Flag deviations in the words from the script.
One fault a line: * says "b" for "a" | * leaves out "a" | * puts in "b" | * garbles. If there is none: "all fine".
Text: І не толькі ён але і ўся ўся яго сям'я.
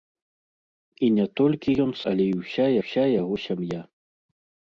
all fine